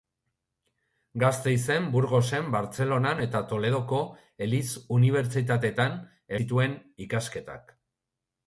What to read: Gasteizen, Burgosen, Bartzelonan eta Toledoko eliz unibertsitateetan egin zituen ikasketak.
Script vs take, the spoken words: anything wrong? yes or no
yes